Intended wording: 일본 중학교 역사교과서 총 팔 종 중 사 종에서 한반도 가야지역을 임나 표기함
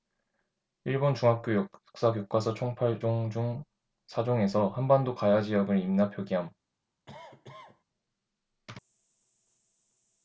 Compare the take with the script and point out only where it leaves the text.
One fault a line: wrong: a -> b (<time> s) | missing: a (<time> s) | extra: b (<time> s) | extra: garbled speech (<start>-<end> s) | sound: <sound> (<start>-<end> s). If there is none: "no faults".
sound: cough (7.1-7.8 s)